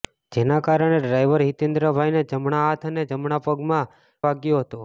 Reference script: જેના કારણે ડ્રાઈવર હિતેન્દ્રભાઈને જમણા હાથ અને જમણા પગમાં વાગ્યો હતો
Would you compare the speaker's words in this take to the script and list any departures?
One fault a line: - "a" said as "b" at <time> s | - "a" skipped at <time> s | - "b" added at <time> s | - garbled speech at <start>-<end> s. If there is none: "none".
none